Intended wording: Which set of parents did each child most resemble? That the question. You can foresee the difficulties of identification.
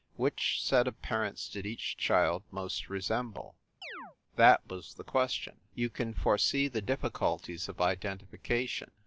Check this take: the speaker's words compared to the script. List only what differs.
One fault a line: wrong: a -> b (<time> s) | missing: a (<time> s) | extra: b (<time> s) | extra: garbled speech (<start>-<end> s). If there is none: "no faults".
extra: was (4.7 s)